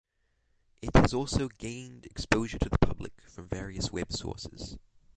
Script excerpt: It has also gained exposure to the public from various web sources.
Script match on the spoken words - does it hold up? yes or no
yes